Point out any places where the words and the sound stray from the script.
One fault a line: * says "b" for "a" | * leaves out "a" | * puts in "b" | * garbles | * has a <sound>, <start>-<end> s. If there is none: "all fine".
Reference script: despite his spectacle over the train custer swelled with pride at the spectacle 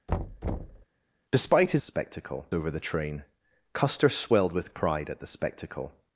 * has a thud, 0.1-0.9 s